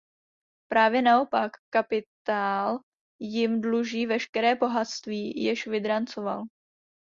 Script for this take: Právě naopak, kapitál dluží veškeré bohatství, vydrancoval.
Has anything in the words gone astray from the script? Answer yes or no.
yes